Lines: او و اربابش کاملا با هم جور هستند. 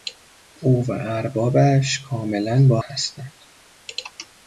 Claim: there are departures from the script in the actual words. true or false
true